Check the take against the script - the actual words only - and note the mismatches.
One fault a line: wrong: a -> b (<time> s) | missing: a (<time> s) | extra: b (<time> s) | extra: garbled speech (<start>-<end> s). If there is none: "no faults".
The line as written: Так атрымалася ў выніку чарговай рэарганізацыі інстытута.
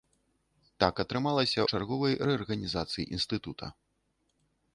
missing: ў выніку (1.6 s)